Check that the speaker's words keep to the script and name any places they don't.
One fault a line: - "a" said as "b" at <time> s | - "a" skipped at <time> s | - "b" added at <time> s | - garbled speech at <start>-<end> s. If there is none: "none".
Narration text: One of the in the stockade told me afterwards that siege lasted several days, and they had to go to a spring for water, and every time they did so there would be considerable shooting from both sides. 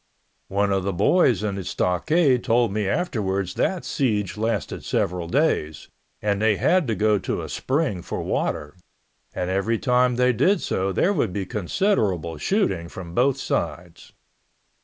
- "boys" added at 0.9 s